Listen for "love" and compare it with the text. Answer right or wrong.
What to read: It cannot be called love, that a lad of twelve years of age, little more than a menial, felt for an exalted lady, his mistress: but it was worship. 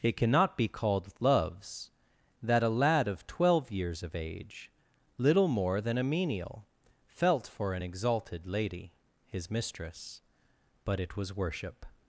wrong